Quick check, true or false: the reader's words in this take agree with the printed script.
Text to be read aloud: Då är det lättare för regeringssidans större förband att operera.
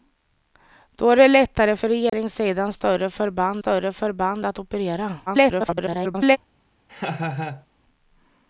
false